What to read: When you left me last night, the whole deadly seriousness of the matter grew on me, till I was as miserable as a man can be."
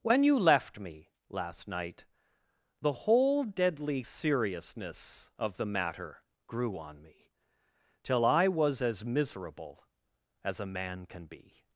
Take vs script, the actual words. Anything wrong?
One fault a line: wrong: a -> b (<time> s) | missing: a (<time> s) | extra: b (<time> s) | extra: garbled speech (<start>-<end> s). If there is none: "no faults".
no faults